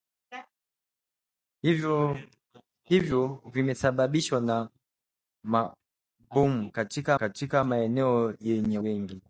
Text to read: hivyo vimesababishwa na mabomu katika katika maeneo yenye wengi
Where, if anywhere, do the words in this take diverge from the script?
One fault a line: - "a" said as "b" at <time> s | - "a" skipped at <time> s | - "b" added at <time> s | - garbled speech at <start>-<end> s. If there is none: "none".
none